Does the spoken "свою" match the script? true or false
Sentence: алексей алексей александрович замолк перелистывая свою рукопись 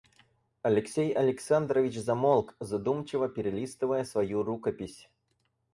true